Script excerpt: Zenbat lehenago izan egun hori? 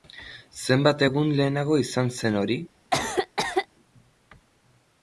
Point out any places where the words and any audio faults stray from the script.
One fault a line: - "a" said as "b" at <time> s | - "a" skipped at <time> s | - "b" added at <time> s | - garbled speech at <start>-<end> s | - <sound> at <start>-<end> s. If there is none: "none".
- "egun" added at 1.1 s
- "egun" said as "zen" at 2.2 s
- cough at 2.9-3.7 s